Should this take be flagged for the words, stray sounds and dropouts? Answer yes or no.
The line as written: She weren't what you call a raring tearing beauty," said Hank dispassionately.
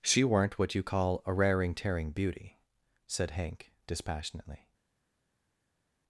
no